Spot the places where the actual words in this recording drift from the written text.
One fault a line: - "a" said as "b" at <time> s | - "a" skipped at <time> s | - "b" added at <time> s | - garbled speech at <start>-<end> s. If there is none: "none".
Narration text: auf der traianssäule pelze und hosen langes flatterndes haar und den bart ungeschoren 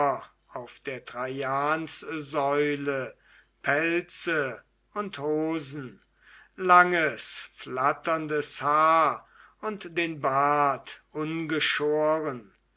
none